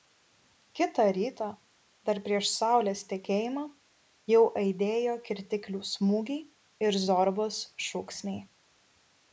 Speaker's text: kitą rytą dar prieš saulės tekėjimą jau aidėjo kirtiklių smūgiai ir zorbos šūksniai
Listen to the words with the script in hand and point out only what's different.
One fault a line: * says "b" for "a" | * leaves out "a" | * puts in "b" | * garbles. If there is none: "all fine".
all fine